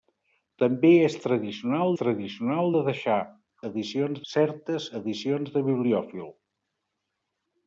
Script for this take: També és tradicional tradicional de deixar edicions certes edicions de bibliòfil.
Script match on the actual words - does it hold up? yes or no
yes